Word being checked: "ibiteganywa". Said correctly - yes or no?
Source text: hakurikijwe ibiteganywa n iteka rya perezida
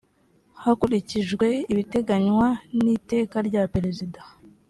yes